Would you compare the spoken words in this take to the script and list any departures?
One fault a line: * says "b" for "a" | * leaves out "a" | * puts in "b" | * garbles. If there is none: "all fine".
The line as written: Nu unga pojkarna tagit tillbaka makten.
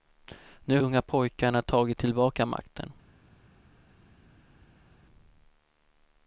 all fine